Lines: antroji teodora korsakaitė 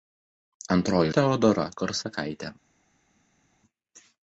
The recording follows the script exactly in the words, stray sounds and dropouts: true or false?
true